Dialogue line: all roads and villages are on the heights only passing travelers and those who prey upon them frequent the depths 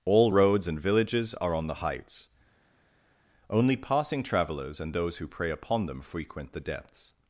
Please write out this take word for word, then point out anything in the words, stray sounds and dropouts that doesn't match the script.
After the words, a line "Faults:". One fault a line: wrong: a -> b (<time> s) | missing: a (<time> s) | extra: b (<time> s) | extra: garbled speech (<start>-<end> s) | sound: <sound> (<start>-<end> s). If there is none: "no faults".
all roads and villages are on the heights only passing travelers and those who prey upon them frequent the depths
Faults:
no faults